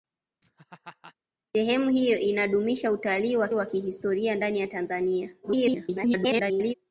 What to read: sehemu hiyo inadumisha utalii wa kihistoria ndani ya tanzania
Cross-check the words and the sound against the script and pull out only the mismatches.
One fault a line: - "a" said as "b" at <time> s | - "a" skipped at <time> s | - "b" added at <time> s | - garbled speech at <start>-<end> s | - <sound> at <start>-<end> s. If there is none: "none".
- laugh at 0.4-1.1 s
- "wa" added at 3.5 s
- garbled speech at 5.4-6.7 s